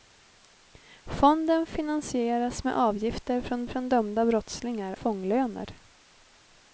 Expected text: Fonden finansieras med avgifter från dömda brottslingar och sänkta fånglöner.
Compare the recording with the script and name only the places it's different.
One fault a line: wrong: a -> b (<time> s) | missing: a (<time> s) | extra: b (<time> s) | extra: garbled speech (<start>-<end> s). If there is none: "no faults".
extra: från (3.7 s)
missing: och sänkta (5.0 s)